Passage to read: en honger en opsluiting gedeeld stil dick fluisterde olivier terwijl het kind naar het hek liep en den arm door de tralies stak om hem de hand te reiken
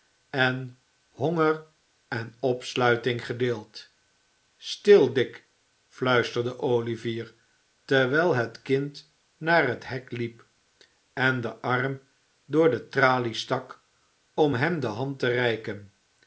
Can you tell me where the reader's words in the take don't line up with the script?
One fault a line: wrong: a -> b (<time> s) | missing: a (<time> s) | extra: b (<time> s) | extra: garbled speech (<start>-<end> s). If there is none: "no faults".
no faults